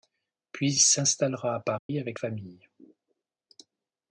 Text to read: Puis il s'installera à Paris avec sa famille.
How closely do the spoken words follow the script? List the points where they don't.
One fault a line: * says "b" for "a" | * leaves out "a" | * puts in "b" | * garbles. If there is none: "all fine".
* leaves out "il"
* leaves out "sa"